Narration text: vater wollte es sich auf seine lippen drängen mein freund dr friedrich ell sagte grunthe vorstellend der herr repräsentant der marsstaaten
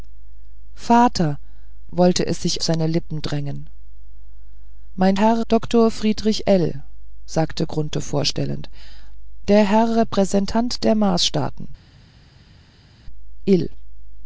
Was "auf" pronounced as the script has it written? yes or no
no